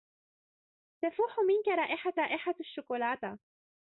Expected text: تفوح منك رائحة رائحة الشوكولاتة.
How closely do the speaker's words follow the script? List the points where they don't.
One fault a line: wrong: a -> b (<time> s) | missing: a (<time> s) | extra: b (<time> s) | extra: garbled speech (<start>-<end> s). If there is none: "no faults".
no faults